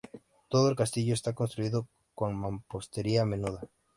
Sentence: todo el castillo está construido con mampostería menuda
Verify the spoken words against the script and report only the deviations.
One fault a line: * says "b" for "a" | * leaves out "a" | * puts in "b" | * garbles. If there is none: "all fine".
all fine